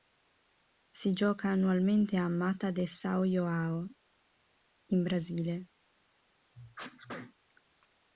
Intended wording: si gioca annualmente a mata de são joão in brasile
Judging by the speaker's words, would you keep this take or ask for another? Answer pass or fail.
pass